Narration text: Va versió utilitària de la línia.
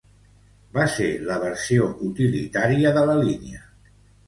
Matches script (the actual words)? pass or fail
fail